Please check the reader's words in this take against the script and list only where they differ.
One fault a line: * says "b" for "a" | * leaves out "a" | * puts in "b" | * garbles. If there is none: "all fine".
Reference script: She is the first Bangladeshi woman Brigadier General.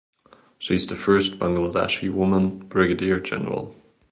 all fine